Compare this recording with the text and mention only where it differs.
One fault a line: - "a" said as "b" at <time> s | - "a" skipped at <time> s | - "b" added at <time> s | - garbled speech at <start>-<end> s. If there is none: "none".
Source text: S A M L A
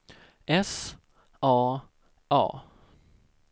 - "M L" skipped at 1.8 s